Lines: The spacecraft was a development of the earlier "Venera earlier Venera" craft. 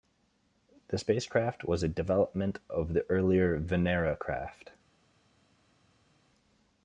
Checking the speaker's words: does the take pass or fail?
fail